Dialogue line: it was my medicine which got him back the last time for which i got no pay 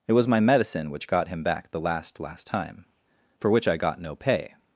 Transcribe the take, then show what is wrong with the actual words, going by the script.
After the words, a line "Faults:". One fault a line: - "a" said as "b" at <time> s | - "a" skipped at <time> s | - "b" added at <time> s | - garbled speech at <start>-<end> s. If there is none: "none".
it was my medicine which got him back the last last time for which i got no pay
Faults:
- "last" added at 2.2 s